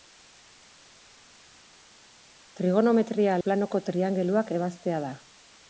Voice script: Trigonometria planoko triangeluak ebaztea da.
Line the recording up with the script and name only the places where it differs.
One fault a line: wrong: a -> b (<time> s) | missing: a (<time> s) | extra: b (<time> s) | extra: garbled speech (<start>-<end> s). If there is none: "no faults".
no faults